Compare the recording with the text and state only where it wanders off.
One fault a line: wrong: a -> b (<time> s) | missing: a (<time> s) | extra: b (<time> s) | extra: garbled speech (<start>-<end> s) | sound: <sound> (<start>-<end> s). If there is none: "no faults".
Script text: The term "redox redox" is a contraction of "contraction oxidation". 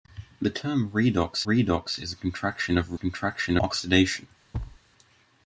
sound: thud (4.5-4.8 s)